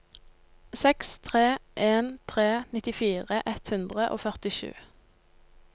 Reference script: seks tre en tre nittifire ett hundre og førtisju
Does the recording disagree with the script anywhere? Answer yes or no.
no